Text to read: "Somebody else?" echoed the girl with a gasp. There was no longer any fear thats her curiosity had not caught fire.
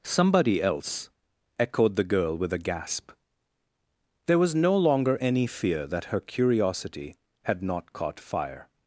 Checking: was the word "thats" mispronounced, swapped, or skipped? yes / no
yes